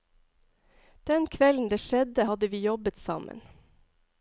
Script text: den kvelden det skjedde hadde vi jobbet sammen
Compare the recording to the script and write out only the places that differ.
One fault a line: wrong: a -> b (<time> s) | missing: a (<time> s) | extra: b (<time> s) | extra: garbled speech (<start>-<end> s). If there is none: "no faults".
no faults